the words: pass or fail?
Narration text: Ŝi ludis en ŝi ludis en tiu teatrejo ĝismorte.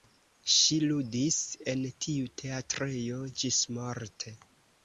fail